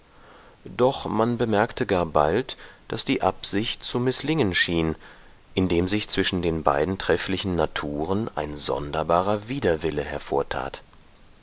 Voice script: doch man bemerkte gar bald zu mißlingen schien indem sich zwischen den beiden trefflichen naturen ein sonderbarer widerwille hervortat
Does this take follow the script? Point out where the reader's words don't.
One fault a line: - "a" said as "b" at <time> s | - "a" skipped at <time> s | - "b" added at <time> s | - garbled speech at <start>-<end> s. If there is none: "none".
- "daß die absicht" added at 2.9 s